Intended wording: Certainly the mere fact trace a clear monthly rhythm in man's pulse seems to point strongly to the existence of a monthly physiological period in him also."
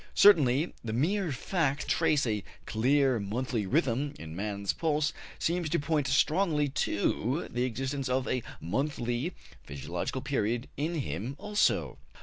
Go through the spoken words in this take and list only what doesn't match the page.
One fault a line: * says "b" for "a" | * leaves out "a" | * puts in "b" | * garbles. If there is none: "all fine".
all fine